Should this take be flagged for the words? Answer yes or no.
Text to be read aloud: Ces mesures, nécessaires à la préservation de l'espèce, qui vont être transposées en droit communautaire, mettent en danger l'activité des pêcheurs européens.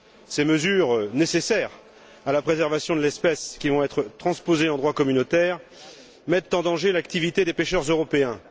no